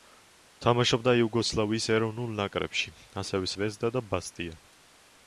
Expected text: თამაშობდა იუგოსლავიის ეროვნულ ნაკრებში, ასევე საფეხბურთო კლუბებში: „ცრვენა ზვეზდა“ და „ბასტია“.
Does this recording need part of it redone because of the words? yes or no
yes